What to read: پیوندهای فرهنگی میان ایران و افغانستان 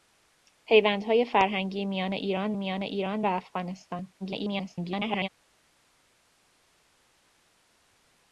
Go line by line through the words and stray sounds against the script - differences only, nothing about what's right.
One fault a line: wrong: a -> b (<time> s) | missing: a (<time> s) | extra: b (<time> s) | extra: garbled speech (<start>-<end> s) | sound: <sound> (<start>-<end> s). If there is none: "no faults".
extra: میان ایران (2.5 s)
extra: garbled speech (4.2-5.3 s)